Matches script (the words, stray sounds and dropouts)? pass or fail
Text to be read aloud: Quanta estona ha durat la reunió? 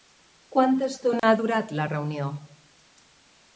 fail